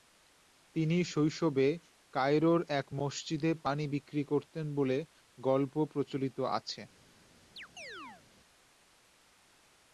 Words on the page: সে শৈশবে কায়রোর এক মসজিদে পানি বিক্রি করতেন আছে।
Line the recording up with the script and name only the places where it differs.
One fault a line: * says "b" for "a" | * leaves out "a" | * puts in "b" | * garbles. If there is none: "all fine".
* says "তিনি" for "সে"
* puts in "বলে গল্প প্রচলিত"